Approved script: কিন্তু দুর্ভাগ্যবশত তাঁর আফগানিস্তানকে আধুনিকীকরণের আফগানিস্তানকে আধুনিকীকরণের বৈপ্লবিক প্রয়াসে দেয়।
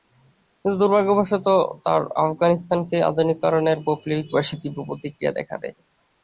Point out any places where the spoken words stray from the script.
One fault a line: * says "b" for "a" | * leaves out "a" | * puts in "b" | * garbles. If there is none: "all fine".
* says "বৈপ্লবিক প্রয়াসে তীব্র প্রতিক্রিয়া দেখা" for "আফগানিস্তানকে আধুনিকীকরণের বৈপ্লবিক প্রয়াসে"